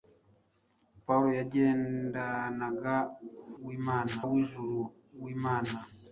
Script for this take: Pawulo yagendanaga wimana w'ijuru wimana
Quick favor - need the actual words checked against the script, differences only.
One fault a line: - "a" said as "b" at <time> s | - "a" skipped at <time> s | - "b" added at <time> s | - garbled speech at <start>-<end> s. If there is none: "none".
none